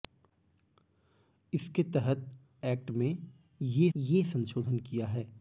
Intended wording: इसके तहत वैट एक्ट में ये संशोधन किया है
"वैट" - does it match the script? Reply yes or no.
no